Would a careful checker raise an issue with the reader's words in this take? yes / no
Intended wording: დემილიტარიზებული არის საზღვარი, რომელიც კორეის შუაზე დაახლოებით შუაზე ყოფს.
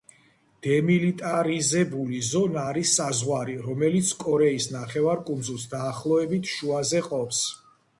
yes